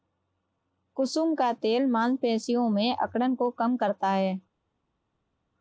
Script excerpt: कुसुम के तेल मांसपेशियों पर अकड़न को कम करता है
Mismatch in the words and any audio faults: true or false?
true